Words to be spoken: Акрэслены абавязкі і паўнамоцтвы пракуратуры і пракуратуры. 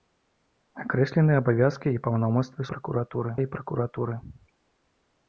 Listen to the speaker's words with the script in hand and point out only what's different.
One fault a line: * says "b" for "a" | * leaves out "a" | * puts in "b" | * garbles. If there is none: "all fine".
all fine